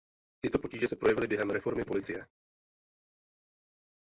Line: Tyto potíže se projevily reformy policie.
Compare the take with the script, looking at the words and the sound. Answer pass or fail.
fail